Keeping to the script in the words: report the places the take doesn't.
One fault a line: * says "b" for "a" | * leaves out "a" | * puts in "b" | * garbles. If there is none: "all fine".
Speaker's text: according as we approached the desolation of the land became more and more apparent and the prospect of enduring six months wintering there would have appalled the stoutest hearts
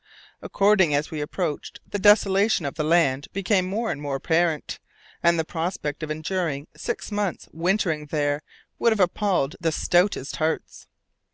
all fine